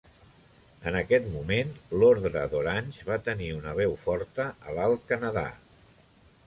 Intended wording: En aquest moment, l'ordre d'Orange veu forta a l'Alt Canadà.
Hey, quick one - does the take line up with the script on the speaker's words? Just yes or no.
no